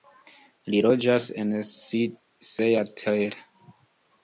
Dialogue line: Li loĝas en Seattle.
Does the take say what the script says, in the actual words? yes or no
yes